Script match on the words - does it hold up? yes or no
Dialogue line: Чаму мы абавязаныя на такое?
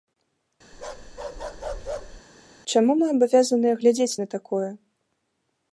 no